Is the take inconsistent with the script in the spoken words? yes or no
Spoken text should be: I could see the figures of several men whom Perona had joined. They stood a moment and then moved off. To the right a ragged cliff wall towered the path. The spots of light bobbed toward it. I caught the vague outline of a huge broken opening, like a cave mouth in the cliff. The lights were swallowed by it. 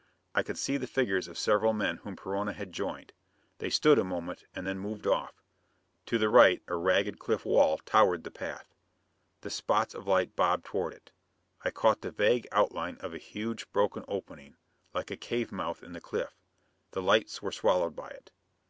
no